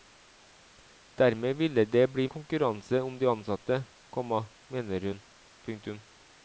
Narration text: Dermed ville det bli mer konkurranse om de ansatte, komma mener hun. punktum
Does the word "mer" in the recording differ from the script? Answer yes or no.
yes